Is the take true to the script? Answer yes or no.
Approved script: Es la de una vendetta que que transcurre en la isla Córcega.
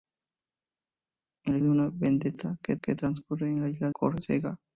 yes